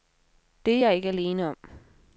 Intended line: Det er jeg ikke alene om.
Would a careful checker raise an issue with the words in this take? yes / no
no